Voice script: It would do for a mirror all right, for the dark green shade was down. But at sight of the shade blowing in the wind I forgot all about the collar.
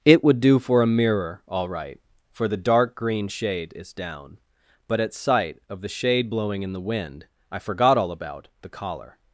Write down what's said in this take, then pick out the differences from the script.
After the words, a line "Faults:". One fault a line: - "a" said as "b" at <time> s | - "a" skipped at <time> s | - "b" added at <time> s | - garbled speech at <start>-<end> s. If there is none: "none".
It would do for a mirror all right, for the dark green shade is down. But at sight of the shade blowing in the wind I forgot all about the collar.
Faults:
- "was" said as "is" at 3.8 s